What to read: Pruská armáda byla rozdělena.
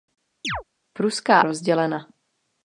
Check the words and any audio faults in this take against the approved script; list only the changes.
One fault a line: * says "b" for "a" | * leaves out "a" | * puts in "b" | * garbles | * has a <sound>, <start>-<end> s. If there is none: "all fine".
* has a chirp, 0.4-0.6 s
* leaves out "armáda byla"